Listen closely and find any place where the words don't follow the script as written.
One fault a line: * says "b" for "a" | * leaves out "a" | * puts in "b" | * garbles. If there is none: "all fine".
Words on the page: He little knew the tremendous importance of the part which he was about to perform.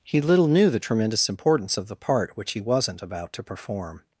* says "wasn't" for "was"